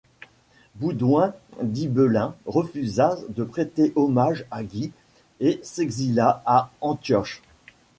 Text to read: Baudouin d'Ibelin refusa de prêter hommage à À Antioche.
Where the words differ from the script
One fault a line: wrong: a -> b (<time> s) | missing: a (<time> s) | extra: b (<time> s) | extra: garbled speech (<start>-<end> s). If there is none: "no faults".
extra: Guy et s'exila (4.6 s)